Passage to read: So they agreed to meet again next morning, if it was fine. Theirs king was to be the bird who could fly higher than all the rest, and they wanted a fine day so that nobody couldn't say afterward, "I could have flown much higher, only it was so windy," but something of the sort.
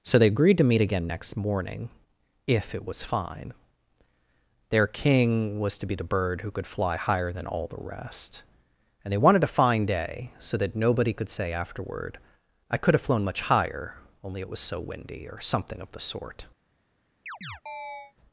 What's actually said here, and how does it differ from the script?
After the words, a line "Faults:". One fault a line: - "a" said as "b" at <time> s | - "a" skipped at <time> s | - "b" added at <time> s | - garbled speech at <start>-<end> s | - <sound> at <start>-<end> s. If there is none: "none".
So they agreed to meet again next morning, if it was fine. Their king was to be the bird who could fly higher than all the rest, and they wanted a fine day so that nobody could say afterward, "I could have flown much higher, only it was so windy," or something of the sort.
Faults:
- "Theirs" said as "Their" at 4.7 s
- "couldn't" said as "could" at 11.1 s
- "but" said as "or" at 15.3 s
- chirp at 17.3-18.1 s